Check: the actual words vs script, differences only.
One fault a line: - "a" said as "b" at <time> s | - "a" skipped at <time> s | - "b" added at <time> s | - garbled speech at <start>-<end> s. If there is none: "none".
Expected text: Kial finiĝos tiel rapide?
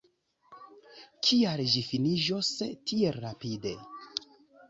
- "ĝi" added at 1.7 s